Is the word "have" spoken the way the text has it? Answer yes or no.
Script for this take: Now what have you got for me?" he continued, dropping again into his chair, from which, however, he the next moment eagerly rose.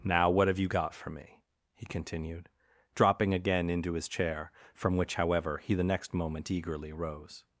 yes